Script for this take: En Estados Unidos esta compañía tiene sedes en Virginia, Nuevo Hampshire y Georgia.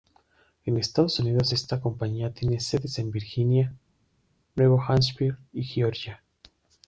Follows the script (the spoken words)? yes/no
yes